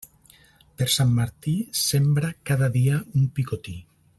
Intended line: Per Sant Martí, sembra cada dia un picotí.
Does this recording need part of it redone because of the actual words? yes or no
no